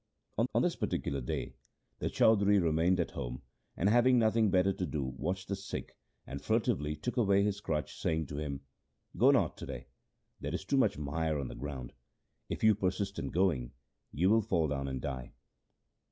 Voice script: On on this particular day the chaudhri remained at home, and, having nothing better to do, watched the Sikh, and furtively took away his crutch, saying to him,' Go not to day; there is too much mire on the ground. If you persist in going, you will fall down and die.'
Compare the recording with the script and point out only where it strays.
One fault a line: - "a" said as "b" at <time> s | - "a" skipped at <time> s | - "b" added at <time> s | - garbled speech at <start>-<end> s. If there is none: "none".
none